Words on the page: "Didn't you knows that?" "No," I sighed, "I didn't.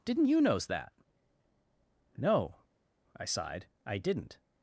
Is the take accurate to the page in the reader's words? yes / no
yes